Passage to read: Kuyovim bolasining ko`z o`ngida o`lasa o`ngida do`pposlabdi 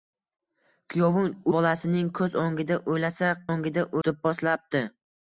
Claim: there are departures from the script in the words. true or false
false